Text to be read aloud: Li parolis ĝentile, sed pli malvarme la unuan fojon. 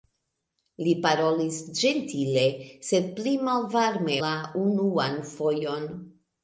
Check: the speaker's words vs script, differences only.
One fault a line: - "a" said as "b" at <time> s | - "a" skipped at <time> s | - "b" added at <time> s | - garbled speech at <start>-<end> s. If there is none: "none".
none